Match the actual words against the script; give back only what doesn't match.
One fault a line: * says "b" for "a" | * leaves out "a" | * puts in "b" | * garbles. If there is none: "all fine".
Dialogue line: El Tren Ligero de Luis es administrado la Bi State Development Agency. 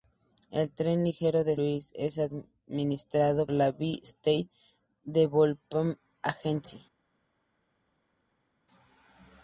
all fine